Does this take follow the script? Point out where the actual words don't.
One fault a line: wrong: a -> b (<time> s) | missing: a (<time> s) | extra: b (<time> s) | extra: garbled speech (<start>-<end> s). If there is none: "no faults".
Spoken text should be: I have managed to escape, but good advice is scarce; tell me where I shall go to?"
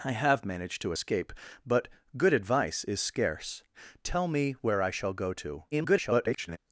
extra: garbled speech (5.7-6.6 s)